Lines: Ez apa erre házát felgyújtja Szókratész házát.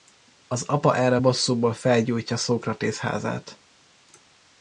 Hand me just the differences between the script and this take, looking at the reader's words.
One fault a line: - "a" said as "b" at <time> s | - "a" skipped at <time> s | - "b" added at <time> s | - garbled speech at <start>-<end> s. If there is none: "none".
- "Ez" said as "Az" at 0.5 s
- "házát" said as "bosszúból" at 1.2 s